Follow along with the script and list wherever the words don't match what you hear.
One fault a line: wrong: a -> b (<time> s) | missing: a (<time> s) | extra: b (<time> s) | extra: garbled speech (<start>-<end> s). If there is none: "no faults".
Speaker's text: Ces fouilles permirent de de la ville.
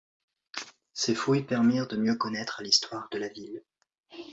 extra: mieux connaître l'histoire (1.9 s)